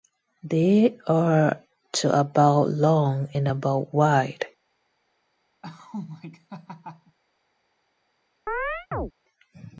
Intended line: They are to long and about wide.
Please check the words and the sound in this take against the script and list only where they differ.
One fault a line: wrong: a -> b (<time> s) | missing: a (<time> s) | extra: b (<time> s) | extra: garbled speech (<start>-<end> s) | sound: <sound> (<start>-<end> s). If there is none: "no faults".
extra: about (2.2 s)
sound: laugh (5.6-7.2 s)
sound: chirp (8.5-9.1 s)